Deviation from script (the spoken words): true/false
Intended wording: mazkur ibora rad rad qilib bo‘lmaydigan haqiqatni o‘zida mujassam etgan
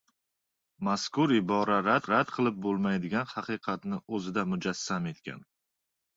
false